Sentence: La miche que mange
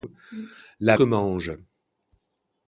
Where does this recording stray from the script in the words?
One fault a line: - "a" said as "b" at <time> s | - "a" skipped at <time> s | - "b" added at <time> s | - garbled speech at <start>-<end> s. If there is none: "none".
- "miche" skipped at 1.0 s